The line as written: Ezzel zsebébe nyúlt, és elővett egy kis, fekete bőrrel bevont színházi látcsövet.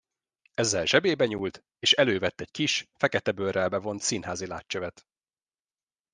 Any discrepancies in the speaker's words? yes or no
no